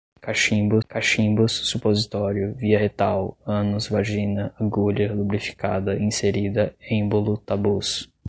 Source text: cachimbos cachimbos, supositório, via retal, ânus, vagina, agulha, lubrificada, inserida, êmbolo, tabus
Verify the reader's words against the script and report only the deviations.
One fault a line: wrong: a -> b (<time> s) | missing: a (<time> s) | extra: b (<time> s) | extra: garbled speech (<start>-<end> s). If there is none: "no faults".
no faults